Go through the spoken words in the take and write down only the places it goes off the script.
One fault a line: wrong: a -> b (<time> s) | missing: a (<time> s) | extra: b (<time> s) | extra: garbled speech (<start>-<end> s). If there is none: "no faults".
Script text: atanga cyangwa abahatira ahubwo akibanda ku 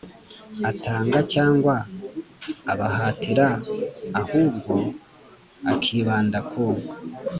no faults